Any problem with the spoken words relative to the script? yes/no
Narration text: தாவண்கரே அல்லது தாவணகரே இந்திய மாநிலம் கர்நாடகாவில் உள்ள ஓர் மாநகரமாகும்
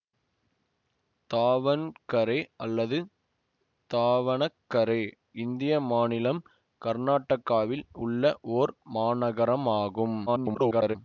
yes